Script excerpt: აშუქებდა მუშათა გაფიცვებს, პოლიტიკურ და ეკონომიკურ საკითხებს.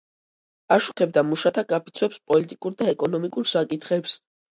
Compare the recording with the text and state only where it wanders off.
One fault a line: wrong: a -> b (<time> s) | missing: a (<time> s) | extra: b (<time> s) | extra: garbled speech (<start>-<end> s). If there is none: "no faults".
no faults